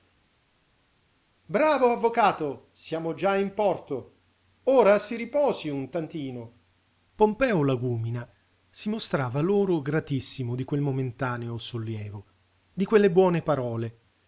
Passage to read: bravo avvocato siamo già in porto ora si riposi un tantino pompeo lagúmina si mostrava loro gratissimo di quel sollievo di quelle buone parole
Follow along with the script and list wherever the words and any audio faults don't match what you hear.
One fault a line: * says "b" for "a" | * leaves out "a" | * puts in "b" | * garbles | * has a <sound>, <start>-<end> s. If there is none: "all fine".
* puts in "momentaneo"